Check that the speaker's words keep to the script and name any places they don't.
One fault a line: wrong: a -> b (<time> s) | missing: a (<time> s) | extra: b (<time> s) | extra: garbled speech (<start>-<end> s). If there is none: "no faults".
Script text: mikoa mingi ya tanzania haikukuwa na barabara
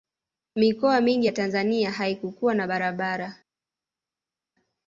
no faults